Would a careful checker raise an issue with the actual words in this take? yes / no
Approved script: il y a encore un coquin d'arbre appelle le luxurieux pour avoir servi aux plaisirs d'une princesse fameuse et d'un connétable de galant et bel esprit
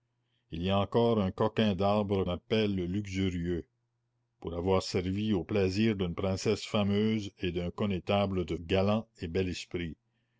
no